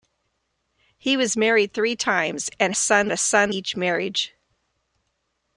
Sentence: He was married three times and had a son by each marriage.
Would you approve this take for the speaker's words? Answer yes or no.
no